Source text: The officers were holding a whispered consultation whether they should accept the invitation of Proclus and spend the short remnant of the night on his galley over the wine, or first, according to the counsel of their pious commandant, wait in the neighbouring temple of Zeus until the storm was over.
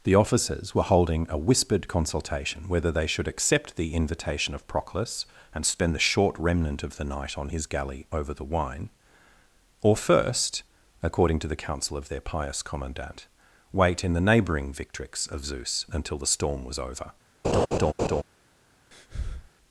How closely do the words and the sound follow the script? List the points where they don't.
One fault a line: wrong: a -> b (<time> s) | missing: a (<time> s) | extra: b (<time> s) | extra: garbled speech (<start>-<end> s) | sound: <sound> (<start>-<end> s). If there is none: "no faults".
wrong: temple -> victrix (14.7 s)
sound: laugh (17.4-18.2 s)
sound: breath (18.9-19.5 s)